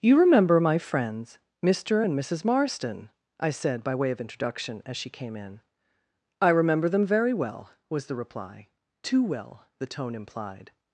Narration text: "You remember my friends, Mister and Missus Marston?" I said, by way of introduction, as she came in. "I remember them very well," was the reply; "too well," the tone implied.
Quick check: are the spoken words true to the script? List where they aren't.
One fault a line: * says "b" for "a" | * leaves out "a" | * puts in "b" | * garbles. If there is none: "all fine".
all fine